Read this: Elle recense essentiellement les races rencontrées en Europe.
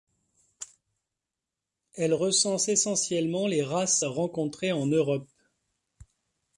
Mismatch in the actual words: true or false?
false